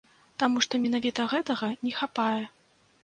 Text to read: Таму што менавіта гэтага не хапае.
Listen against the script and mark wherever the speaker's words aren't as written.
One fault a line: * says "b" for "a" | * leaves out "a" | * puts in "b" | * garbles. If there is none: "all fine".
all fine